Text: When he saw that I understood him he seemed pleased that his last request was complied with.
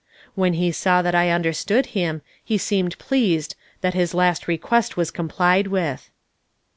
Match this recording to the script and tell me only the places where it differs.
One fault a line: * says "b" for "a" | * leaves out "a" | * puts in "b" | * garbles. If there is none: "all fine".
all fine